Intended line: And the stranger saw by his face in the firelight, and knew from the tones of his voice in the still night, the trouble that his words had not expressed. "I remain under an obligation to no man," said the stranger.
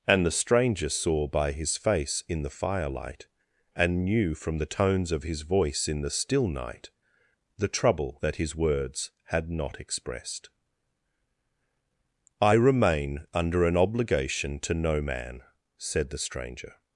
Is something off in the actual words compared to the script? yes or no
no